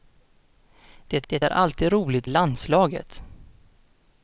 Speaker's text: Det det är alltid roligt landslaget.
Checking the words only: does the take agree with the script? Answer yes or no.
yes